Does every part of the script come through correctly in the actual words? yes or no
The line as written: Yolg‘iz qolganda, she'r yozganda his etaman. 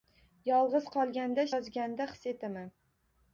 no